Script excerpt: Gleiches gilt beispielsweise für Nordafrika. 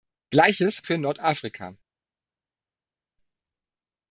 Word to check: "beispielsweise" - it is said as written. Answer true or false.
false